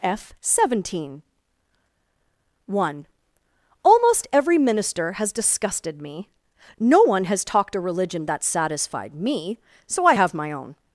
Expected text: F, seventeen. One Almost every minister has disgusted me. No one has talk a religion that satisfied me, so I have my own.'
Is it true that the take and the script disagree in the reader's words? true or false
true